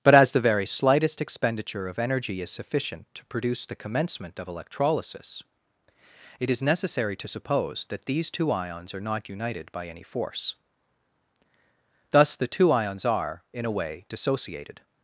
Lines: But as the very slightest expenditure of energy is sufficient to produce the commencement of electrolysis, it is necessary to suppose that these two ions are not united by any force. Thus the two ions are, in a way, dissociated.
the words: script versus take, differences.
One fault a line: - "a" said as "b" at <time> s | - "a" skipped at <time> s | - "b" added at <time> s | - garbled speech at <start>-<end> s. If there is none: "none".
none